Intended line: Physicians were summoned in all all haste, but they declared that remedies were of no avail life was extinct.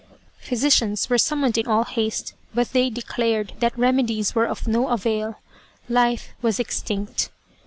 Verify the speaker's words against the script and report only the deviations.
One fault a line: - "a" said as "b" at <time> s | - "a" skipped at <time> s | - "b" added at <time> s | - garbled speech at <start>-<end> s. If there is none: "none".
- "all" skipped at 1.8 s